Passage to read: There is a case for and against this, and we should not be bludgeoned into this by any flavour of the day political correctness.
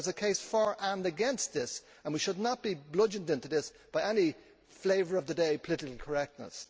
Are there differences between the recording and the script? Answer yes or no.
no